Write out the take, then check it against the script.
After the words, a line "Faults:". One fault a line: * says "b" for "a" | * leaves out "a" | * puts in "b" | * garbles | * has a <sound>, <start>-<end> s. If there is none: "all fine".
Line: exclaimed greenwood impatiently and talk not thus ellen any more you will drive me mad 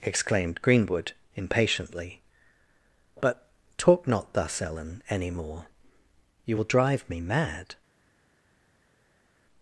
exclaimed greenwood impatiently but talk not thus ellen any more you will drive me mad
Faults:
* says "but" for "and"